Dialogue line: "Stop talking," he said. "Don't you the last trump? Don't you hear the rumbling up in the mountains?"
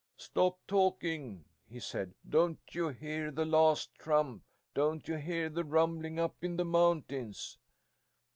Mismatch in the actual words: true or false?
true